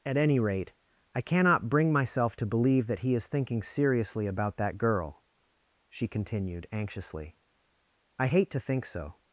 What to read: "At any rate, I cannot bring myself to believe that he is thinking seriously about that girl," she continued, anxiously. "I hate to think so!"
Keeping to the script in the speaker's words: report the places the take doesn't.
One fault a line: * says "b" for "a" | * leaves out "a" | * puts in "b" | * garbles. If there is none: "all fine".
all fine